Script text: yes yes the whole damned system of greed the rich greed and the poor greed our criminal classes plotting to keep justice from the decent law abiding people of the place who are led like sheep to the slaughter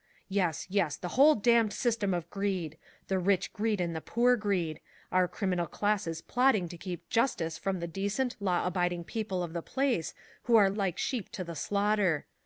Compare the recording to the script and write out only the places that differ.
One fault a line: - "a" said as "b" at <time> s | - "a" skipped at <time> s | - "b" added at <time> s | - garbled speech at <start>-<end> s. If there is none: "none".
- "led" skipped at 10.7 s